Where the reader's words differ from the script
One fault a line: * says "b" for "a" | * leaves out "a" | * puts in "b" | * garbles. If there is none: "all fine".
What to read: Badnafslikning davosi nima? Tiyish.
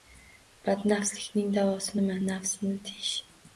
* puts in "Nafsni"